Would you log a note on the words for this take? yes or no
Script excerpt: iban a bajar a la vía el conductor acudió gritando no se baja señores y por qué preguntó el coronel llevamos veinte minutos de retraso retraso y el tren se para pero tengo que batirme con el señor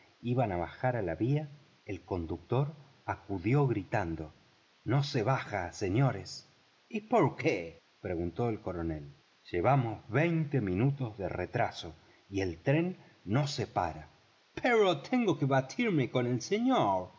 yes